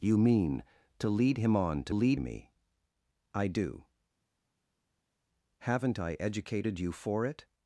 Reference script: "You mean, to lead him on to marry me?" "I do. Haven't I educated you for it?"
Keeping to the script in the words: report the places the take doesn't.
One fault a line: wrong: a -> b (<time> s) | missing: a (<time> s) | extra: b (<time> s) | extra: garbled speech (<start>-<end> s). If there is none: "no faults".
wrong: marry -> lead (1.9 s)